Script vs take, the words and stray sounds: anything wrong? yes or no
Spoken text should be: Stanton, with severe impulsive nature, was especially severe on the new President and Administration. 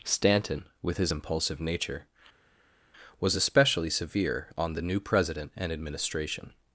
yes